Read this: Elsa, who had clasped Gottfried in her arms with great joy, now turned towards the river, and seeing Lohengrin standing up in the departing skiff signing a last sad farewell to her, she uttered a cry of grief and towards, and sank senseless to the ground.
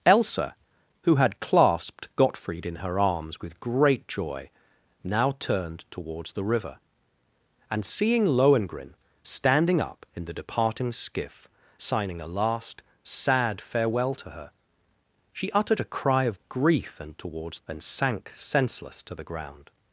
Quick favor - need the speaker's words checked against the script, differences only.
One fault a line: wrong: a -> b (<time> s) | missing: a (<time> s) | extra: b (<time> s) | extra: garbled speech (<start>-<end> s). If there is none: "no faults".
no faults